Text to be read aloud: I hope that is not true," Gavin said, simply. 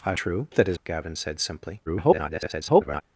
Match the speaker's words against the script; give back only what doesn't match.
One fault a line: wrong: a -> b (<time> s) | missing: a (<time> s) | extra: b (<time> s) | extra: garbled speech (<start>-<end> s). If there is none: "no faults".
wrong: hope -> true (0.2 s)
missing: not true (0.8 s)
extra: garbled speech (1.9-3.0 s)